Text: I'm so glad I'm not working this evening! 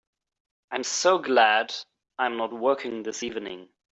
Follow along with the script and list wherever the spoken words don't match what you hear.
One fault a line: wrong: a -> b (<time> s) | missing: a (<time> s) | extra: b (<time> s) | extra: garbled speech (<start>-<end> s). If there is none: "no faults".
no faults